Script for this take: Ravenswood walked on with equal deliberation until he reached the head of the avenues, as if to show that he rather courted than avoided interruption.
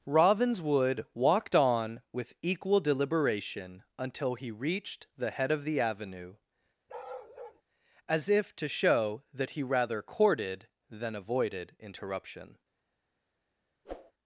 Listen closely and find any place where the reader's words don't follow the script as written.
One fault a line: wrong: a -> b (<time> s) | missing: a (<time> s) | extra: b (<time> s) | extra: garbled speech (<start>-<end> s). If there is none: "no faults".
wrong: avenues -> avenue (5.8 s)